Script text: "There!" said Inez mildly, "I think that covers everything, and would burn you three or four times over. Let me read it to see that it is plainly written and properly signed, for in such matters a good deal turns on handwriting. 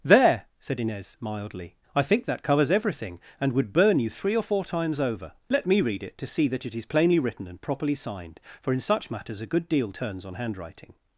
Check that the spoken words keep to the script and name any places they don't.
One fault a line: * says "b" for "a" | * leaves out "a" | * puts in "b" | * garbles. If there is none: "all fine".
all fine